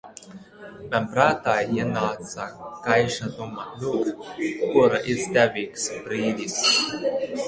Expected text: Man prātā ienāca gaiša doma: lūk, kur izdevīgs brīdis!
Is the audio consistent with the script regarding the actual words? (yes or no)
yes